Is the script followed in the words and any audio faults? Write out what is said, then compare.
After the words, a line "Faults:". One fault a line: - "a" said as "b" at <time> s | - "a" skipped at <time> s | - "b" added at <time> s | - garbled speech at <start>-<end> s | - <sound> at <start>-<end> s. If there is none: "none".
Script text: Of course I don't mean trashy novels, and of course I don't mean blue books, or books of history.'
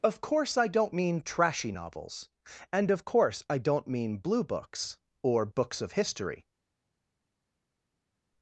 Of course I don't mean trashy novels, and of course I don't mean blue books, or books of history.'
Faults:
none